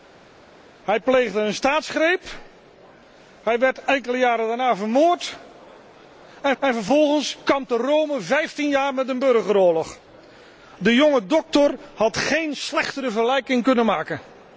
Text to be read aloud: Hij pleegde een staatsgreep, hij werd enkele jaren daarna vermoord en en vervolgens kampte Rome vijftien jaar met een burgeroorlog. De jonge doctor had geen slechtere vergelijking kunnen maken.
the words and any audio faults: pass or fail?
pass